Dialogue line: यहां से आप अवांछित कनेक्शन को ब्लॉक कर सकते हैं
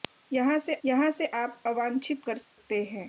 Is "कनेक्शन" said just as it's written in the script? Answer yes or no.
no